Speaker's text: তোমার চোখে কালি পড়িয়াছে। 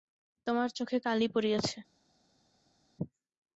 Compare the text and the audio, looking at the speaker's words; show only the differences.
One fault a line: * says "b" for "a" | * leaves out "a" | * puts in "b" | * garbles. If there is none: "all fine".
all fine